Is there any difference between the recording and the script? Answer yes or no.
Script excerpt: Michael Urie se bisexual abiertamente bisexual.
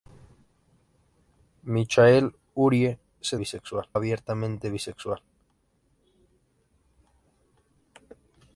no